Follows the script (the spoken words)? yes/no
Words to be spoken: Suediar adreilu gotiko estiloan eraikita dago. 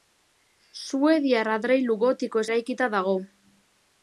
no